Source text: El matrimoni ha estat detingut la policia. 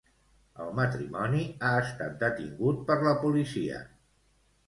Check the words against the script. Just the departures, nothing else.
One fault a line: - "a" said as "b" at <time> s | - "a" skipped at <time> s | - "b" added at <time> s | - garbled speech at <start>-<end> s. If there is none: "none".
- "per" added at 2.9 s